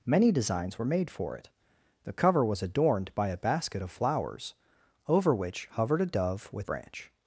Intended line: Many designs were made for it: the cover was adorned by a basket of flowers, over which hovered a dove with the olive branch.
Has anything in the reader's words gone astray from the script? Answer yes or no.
yes